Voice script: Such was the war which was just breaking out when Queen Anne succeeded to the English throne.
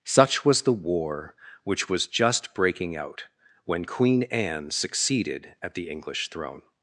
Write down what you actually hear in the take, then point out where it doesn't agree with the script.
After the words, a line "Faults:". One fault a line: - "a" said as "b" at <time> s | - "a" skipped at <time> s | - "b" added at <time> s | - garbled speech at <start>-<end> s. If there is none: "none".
Such was the war which was just breaking out when Queen Anne succeeded at the English throne.
Faults:
- "to" said as "at" at 5.6 s